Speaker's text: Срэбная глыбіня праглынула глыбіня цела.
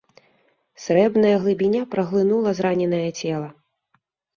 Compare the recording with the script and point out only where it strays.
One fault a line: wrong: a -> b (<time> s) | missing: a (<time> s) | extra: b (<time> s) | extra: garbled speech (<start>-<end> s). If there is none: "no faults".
wrong: глыбіня -> зраненае (2.6 s)